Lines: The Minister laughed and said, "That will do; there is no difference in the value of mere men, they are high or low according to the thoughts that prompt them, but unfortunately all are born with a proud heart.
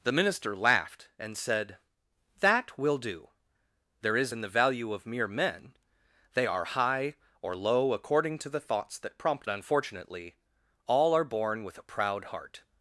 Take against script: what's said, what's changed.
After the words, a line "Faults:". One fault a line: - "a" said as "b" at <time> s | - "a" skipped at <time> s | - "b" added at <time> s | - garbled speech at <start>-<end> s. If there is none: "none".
The Minister laughed and said, "That will do; there is in the value of mere men, they are high or low according to the thoughts that prompt unfortunately all are born with a proud heart.
Faults:
- "no difference" skipped at 4.3 s
- "them but" skipped at 9.5 s